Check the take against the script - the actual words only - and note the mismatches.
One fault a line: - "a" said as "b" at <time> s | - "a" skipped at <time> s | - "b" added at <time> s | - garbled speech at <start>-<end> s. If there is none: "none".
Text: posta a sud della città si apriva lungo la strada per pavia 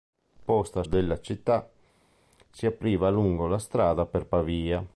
- "sud" skipped at 0.8 s